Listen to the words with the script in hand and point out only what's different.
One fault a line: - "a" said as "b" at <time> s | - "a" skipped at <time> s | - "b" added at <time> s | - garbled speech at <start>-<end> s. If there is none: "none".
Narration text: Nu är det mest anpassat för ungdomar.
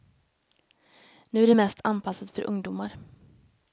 none